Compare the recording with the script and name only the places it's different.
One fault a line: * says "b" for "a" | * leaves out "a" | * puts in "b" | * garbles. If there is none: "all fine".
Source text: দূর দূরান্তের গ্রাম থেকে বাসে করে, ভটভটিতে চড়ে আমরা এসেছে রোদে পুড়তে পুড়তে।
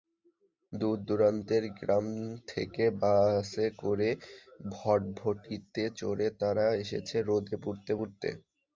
* says "তারা" for "আমরা"